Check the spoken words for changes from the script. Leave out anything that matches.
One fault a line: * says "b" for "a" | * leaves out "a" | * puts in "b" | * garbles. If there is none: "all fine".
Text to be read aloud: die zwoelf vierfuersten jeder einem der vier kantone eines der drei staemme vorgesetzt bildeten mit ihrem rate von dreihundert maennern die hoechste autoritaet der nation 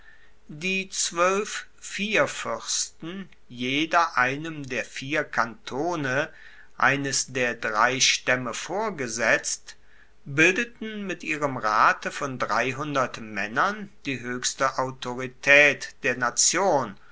all fine